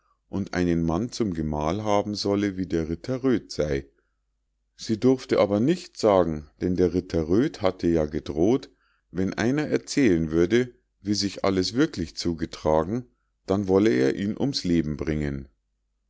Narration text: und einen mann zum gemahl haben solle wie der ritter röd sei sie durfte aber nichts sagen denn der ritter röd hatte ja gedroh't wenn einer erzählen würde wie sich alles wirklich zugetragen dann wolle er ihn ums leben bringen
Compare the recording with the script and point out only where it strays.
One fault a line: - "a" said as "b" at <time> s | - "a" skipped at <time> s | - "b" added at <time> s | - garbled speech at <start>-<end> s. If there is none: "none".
none